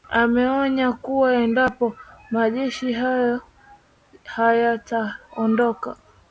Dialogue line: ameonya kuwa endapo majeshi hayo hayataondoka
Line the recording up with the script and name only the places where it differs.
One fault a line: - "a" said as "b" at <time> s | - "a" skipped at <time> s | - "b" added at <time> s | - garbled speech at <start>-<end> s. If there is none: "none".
none